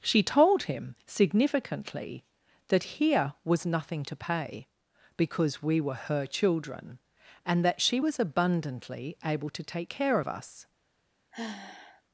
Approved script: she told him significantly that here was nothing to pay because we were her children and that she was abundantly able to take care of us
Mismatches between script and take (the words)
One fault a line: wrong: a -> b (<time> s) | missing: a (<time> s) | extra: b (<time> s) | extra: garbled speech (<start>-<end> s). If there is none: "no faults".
no faults